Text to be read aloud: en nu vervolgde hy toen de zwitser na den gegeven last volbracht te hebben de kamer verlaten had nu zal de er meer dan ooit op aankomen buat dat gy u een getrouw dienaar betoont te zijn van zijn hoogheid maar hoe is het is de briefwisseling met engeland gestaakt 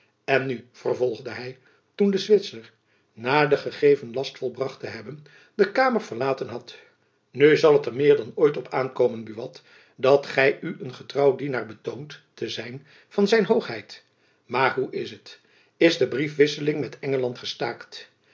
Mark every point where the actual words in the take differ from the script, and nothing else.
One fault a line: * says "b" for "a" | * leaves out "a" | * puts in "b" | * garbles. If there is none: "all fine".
* says "het" for "de"